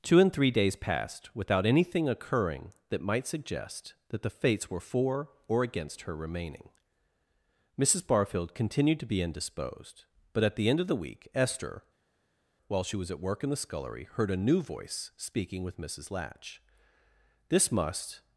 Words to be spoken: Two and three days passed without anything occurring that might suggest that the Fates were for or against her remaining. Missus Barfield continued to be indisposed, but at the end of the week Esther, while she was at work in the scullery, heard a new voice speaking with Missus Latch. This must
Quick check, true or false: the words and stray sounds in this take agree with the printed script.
true